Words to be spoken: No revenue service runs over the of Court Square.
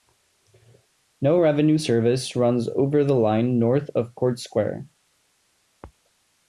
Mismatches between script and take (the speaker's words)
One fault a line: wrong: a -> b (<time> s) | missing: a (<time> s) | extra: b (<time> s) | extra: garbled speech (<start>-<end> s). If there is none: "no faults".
extra: line north (3.2 s)